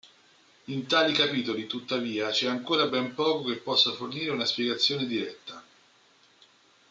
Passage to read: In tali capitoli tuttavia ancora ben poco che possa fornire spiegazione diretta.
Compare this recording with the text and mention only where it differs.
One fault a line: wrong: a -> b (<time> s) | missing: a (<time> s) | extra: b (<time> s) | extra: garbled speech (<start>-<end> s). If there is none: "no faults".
extra: c'è (2.3 s)
extra: una (4.3 s)